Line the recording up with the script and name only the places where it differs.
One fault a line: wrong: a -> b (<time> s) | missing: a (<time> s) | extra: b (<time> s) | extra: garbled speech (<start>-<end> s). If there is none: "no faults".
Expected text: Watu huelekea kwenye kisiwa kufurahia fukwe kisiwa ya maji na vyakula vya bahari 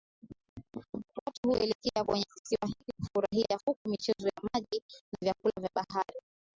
extra: hiki (2.7 s)
wrong: kisiwa -> michezo (3.9 s)